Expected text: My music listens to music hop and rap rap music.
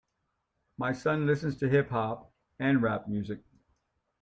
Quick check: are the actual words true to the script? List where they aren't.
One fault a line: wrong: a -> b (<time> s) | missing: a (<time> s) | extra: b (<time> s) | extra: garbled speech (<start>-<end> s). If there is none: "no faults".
wrong: music -> son (0.9 s)
wrong: music -> hip (1.7 s)
missing: rap (3.1 s)